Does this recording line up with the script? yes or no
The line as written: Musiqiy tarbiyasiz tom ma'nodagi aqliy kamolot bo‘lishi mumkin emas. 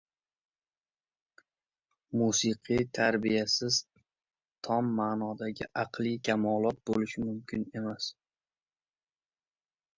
yes